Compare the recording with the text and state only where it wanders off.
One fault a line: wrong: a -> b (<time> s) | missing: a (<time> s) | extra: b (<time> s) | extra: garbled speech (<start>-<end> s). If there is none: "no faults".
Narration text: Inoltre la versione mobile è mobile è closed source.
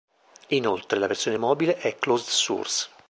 missing: mobile è (2.0 s)